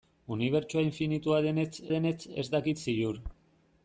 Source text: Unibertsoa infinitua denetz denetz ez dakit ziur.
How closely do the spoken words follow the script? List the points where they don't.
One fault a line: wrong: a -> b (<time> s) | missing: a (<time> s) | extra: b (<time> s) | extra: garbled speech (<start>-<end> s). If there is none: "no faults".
no faults